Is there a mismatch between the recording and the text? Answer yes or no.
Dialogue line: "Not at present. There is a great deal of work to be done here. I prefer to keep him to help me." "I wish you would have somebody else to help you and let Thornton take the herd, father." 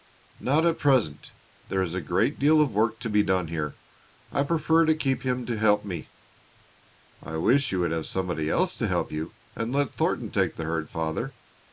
no